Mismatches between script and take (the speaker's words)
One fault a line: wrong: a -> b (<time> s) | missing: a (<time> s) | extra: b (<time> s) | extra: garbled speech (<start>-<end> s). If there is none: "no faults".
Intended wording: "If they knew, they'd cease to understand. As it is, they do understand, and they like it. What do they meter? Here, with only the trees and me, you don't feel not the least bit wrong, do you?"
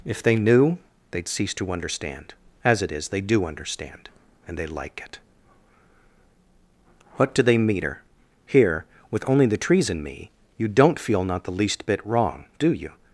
no faults